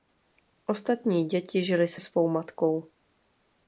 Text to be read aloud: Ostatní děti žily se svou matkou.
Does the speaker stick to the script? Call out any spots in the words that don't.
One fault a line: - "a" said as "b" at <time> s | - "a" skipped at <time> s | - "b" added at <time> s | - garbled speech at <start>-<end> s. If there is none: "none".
none